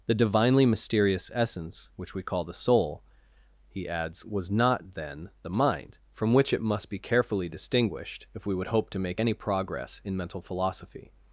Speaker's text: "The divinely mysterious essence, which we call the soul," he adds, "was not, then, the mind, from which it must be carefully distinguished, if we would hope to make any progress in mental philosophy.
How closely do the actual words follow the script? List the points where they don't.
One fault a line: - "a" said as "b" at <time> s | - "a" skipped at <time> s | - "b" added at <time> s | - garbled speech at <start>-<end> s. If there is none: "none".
none